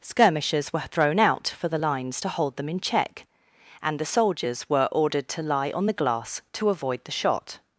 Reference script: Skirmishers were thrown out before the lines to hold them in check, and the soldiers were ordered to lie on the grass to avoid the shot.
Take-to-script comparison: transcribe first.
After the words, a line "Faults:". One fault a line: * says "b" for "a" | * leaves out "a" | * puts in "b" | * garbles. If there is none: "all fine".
Skirmishers were thrown out for the lines to hold them in check, and the soldiers were ordered to lie on the glass to avoid the shot.
Faults:
* says "for" for "before"
* says "glass" for "grass"